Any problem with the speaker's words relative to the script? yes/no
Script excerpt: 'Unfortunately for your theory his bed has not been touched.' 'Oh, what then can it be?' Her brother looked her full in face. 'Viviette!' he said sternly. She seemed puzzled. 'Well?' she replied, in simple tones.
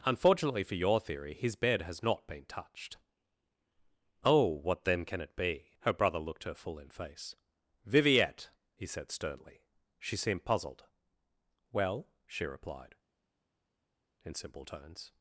no